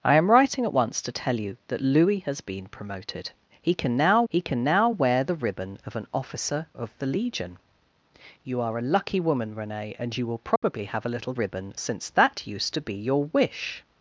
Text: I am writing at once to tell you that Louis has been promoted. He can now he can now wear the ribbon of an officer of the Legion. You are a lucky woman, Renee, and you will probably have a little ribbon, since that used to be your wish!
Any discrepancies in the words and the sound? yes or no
yes